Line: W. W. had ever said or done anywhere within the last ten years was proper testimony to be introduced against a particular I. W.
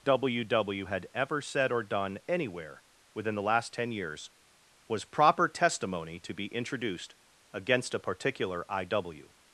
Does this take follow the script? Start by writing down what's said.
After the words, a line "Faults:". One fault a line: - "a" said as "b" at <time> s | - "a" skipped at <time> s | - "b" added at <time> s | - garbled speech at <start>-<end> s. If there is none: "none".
W. W. had ever said or done anywhere within the last ten years was proper testimony to be introduced against a particular I. W.
Faults:
none